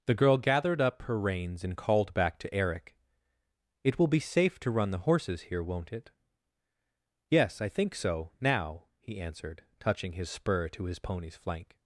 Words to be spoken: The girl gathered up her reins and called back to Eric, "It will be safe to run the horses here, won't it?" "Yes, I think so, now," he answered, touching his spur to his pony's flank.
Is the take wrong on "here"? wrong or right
right